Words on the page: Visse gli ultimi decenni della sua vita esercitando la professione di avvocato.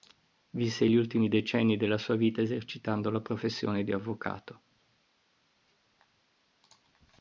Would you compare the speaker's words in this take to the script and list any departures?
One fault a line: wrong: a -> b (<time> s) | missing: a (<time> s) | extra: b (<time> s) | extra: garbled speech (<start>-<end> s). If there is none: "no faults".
no faults